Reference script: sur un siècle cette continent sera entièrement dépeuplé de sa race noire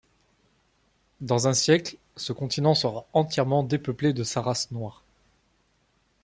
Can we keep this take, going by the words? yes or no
no